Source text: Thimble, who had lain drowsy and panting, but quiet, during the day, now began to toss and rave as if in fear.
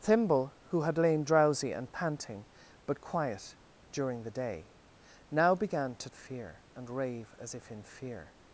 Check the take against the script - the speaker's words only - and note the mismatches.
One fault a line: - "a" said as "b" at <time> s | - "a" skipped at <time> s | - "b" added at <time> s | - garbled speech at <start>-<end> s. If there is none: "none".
- "toss" said as "fear" at 6.1 s